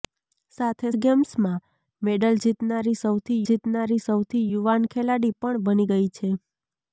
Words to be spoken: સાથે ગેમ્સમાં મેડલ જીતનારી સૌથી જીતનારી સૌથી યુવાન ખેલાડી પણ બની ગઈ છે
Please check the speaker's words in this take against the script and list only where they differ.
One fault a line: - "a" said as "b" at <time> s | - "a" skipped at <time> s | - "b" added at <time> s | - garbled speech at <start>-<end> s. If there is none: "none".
none